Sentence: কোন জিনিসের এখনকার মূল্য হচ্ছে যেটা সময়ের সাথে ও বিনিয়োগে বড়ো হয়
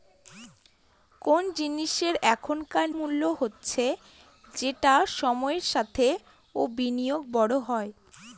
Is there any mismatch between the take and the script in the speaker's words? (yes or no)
no